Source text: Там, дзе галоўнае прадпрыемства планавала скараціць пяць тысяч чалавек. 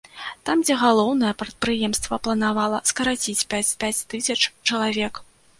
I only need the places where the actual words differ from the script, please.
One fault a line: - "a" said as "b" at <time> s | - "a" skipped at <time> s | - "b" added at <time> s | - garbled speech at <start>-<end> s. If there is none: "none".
- "пяць" added at 3.8 s